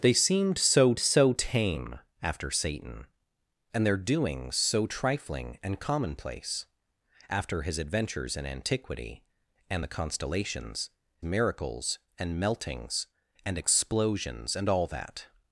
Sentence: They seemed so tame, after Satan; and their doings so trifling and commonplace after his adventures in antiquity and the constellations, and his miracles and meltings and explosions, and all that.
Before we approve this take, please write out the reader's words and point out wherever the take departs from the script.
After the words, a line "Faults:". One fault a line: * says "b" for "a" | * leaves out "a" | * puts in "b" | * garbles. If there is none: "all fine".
They seemed so so tame, after Satan; and their doings so trifling and commonplace after his adventures in antiquity and the constellations, miracles and meltings and explosions, and all that.
Faults:
* puts in "so"
* leaves out "and his"